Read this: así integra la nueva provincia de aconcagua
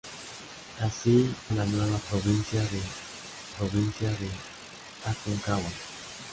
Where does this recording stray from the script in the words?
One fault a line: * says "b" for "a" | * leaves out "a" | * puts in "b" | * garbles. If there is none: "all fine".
* leaves out "integra"
* puts in "provincia de"